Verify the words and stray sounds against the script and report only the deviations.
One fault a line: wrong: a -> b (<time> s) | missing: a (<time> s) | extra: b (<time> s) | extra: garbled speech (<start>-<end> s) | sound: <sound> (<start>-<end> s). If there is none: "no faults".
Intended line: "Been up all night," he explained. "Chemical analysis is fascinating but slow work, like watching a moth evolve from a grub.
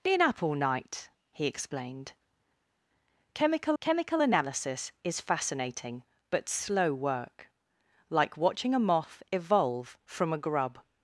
extra: chemical (3.8 s)